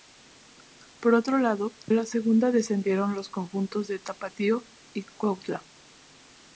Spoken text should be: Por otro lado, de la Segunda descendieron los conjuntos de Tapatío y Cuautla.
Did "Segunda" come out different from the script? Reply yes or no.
no